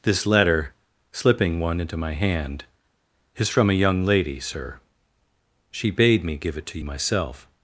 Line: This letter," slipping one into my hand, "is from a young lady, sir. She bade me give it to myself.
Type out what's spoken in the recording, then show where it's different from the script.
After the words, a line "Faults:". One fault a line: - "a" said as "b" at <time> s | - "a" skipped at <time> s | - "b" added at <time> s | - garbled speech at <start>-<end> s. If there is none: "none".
This letter," slipping one into my hand, "is from a young lady, sir. She bade me give it to myself.
Faults:
none